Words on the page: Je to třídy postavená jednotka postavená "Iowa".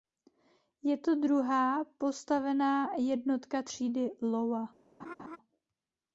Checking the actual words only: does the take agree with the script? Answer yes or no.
no